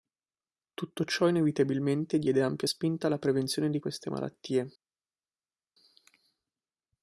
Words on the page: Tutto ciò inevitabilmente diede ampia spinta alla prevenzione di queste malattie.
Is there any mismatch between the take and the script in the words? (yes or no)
no